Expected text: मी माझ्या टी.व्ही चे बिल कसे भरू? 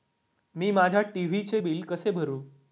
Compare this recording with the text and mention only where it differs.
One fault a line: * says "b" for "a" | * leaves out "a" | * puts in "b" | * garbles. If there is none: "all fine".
all fine